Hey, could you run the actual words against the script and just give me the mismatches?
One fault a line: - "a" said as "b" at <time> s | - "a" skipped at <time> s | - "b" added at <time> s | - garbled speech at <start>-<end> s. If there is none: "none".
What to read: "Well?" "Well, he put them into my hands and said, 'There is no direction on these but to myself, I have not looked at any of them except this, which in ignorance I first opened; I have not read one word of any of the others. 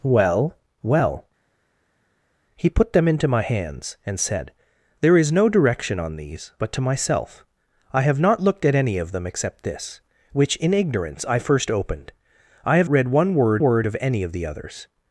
- "not" skipped at 12.9 s
- "word" added at 13.6 s